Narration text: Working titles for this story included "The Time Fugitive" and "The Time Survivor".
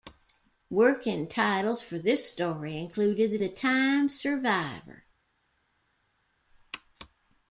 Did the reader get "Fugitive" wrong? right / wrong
wrong